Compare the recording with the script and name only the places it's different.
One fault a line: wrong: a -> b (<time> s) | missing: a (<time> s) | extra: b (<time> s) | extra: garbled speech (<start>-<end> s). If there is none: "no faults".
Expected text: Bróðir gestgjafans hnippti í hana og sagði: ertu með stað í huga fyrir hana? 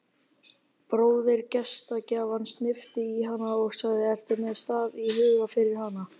no faults